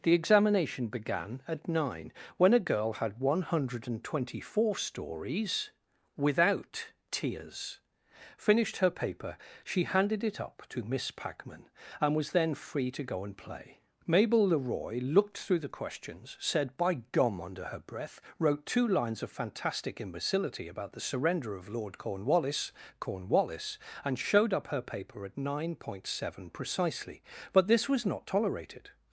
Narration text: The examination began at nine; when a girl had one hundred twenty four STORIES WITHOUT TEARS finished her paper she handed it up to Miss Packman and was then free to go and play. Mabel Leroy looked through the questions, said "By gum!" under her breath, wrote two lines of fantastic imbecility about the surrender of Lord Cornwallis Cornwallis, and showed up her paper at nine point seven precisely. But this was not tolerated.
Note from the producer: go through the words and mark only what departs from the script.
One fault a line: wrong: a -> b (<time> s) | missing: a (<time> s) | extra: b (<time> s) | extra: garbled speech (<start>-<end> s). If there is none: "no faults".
no faults